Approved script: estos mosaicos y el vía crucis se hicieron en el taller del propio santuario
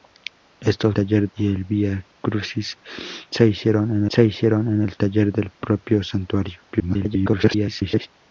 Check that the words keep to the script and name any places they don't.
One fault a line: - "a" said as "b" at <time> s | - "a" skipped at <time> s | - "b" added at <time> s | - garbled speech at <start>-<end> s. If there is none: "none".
- "mosaicos" said as "taller" at 0.9 s
- "se hicieron en" added at 4.1 s
- garbled speech at 6.7-8.1 s